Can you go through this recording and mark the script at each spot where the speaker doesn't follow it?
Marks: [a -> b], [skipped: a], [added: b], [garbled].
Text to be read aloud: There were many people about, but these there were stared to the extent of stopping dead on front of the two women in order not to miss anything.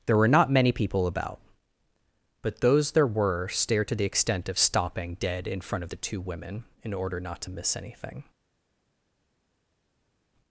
There were [added: not] many people about, but [these -> those] there were stared to the extent of stopping dead [on -> in] front of the two women in order not to miss anything.